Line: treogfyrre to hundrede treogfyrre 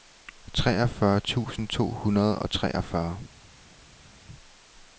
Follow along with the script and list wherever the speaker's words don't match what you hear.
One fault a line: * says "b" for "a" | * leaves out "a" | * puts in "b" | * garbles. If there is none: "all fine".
* puts in "tusind"
* puts in "og"